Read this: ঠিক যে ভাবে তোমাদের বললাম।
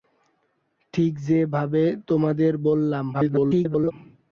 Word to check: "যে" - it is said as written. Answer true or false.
true